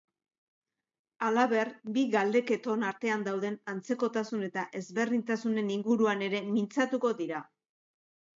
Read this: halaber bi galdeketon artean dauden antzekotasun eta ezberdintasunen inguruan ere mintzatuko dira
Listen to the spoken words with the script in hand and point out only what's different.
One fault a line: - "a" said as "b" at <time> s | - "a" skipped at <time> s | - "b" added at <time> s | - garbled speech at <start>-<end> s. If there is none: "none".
none